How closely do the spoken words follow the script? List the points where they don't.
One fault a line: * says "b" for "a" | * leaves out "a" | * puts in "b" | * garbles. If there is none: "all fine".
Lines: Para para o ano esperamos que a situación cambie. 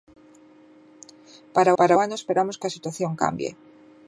all fine